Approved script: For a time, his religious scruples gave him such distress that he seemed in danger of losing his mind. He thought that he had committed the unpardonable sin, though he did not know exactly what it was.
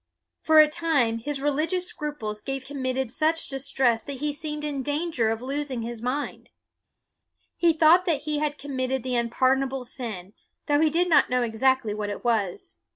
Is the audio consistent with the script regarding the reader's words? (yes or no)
no